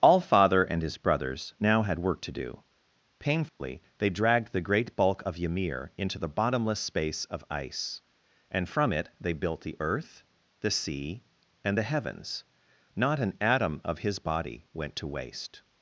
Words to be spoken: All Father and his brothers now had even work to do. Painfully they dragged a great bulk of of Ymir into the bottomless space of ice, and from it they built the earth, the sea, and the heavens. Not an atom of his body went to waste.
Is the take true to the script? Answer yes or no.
no